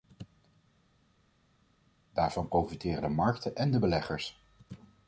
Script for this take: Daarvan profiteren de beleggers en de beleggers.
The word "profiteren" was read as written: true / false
true